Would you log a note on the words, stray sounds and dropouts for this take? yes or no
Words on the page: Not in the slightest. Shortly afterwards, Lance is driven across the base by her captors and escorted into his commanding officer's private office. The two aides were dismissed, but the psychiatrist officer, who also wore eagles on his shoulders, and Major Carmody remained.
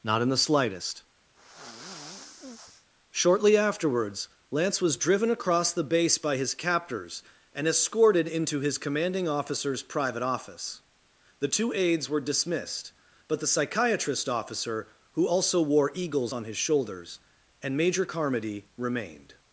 yes